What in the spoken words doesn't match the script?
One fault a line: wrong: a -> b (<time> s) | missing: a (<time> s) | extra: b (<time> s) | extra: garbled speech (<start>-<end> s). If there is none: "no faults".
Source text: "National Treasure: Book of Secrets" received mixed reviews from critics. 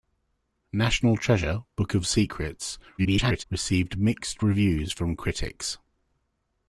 extra: garbled speech (3.0-3.4 s)